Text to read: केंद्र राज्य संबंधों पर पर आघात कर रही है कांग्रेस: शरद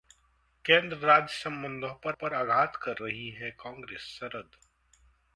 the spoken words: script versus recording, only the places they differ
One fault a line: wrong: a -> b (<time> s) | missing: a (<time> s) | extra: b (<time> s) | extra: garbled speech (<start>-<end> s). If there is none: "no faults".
no faults